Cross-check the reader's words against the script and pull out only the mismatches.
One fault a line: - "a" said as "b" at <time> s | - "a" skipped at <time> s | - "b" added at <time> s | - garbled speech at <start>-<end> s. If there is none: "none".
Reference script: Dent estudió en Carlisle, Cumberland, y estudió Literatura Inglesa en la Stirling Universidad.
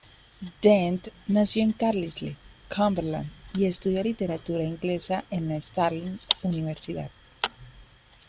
- "estudió" said as "nació" at 1.3 s